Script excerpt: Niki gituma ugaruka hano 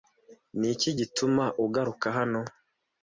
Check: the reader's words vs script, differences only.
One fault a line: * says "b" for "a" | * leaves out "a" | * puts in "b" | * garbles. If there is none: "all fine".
all fine